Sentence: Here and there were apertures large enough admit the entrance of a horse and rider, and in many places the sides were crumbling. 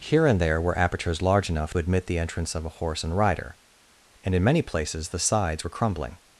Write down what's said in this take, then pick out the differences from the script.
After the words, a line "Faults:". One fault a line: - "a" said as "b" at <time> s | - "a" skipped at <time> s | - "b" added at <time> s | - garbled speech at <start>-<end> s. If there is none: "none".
Here and there were apertures large enough admit the entrance of a horse and rider, and in many places the sides were crumbling.
Faults:
none